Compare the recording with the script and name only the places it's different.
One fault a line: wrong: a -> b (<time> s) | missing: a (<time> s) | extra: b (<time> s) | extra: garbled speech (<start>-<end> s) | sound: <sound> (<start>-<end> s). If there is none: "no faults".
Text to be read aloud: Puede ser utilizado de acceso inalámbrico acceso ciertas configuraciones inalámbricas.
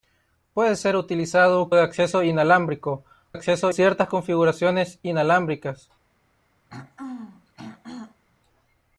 sound: throat clearing (6.7-8.2 s)